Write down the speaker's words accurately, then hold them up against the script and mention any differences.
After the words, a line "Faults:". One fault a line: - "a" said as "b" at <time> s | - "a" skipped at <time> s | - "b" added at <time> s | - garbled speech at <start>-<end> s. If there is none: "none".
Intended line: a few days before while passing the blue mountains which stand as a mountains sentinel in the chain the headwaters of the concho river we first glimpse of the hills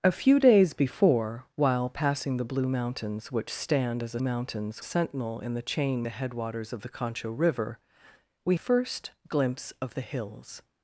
a few days before while passing the blue mountains which stand as a mountains sentinel in the chain the headwaters of the concho river we first glimpse of the hills
Faults:
none